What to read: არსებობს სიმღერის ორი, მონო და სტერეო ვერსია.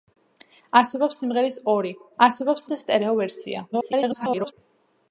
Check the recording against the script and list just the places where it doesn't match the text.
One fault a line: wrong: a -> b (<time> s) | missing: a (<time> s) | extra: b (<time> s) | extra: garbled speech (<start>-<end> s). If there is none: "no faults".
wrong: მონო -> არსებობს (2.3 s)
extra: garbled speech (3.7-4.5 s)